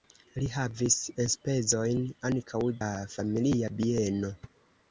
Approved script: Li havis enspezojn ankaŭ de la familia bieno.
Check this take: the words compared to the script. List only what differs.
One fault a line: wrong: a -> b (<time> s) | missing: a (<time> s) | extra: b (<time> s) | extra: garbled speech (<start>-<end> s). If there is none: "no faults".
missing: de (2.6 s)